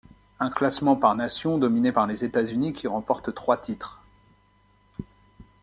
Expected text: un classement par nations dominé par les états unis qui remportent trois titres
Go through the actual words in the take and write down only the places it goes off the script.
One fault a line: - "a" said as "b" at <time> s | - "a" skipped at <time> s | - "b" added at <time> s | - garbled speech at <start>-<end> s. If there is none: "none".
none